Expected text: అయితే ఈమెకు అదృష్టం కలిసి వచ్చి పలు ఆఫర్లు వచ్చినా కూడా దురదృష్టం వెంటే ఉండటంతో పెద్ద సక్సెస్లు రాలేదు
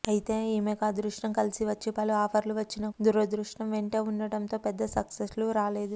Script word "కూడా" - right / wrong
wrong